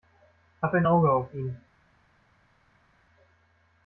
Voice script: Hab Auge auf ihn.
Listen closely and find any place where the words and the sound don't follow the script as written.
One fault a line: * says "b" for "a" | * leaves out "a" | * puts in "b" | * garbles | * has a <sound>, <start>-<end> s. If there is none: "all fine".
* puts in "ein"